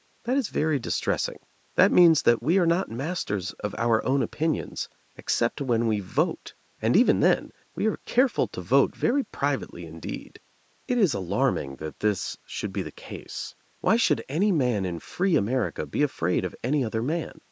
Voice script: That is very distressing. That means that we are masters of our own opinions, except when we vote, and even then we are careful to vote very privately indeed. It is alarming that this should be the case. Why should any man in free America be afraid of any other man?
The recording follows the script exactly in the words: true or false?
false